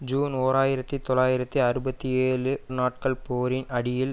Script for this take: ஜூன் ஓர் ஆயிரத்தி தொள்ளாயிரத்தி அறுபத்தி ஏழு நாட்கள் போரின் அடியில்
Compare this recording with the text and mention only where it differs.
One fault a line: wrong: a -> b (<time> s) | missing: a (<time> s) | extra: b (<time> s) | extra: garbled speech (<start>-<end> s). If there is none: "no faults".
no faults